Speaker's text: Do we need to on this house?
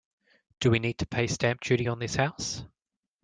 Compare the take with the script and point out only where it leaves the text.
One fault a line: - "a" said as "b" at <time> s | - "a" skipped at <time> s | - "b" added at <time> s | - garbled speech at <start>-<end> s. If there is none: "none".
- "pay stamp duty" added at 1.1 s